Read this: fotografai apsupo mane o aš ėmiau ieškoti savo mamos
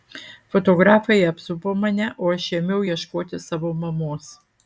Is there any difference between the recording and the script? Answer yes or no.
no